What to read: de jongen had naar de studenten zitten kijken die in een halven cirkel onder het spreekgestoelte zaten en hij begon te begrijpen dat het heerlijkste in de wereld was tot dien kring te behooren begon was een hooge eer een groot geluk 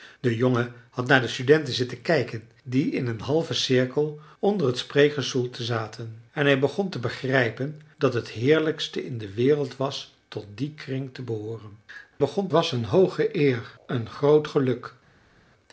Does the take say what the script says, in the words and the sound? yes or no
yes